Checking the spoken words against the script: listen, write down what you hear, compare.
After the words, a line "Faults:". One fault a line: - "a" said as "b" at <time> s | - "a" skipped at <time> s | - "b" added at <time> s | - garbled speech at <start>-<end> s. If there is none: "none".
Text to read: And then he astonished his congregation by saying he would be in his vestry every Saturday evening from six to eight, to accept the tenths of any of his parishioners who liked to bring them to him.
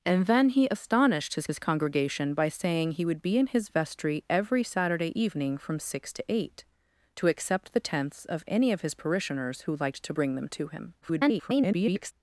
And then he astonished his his congregation by saying he would be in his vestry every Saturday evening from six to eight, to accept the tenths of any of his parishioners who liked to bring them to him. [garbled]
Faults:
- "his" added at 1.5 s
- garbled speech at 11.0-12.1 s